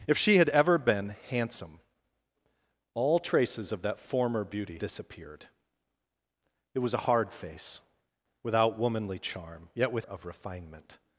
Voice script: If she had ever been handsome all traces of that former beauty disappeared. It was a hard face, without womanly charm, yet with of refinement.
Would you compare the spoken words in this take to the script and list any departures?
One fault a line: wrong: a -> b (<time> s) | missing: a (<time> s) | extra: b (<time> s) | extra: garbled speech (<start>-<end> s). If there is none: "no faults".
no faults